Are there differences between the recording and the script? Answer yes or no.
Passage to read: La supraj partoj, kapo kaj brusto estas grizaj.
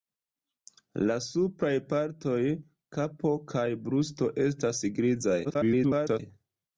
yes